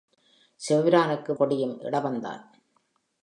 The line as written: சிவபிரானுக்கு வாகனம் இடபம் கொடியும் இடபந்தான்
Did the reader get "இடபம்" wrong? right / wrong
wrong